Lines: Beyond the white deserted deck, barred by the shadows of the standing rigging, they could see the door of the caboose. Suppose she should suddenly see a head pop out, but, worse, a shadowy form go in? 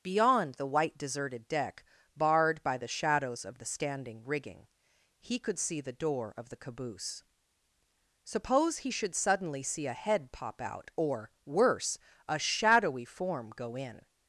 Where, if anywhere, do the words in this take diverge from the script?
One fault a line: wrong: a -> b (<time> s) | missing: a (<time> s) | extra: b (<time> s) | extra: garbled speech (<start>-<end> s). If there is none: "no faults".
wrong: they -> he (5.2 s)
wrong: she -> he (8.8 s)
wrong: but -> or (10.9 s)